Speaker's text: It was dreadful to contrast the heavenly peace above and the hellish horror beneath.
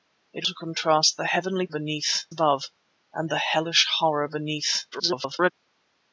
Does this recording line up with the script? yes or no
no